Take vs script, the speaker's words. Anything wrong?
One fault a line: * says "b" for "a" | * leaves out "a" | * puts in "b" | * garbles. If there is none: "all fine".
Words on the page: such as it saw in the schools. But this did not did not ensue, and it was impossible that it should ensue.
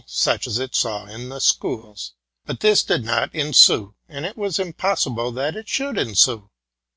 * leaves out "did not"